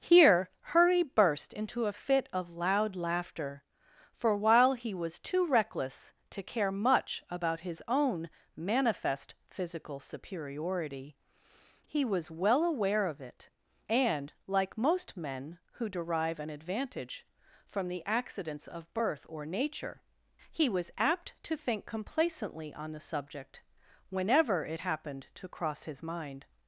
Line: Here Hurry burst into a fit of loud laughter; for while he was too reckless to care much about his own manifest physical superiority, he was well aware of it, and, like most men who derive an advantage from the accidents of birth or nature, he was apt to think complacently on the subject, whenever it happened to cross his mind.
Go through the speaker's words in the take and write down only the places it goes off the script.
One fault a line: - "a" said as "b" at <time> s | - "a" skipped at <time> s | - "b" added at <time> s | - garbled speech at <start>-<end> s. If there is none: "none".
none